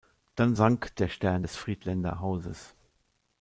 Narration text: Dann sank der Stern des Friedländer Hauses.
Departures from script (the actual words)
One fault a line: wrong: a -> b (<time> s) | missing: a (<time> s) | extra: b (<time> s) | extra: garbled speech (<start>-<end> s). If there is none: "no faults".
no faults